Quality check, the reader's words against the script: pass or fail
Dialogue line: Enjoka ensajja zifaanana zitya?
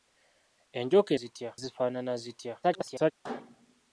fail